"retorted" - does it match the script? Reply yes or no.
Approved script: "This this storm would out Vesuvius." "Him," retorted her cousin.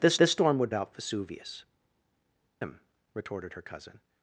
yes